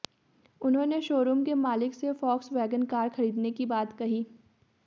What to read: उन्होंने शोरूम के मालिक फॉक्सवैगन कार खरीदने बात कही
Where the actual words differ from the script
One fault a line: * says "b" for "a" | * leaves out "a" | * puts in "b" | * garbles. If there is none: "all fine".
* puts in "से"
* puts in "की"